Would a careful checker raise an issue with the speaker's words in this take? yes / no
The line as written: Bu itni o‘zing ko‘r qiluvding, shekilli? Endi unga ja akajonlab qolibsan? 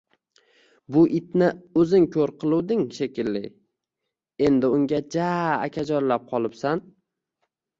no